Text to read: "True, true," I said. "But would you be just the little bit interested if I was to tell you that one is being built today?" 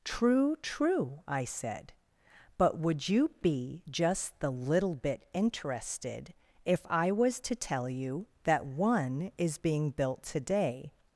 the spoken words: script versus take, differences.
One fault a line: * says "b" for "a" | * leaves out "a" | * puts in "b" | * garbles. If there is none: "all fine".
all fine